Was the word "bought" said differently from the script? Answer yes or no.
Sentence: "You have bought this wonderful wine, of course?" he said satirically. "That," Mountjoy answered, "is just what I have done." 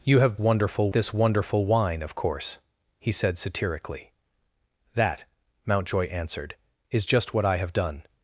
yes